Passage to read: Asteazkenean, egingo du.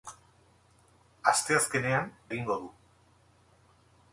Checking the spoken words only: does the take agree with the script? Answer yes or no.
yes